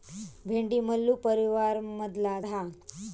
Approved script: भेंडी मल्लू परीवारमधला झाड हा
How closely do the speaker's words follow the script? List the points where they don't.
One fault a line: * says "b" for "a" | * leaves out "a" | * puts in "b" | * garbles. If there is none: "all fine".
* leaves out "झाड"